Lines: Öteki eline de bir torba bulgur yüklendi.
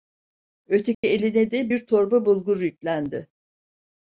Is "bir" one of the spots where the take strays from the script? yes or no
no